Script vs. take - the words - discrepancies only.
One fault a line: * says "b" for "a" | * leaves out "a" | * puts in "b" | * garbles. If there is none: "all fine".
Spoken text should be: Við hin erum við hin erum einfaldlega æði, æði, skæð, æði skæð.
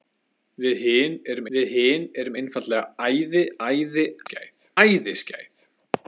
all fine